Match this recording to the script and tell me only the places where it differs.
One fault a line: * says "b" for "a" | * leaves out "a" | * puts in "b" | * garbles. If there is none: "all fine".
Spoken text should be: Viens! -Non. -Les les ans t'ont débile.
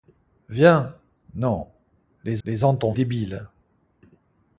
all fine